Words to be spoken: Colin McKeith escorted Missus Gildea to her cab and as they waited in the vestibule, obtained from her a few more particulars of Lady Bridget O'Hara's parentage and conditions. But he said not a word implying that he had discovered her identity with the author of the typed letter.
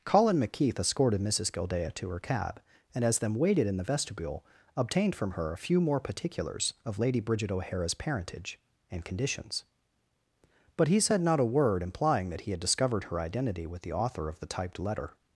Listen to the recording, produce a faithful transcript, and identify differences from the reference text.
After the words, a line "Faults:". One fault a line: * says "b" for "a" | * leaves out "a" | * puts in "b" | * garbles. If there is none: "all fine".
Colin McKeith escorted Missus Gildea to her cab and as them waited in the vestibule, obtained from her a few more particulars of Lady Bridget O'Hara's parentage and conditions. But he said not a word implying that he had discovered her identity with the author of the typed letter.
Faults:
* says "them" for "they"